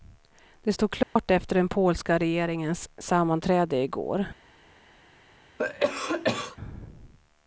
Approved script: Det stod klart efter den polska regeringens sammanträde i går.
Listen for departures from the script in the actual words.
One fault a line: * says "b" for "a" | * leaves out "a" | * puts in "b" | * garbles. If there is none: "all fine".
all fine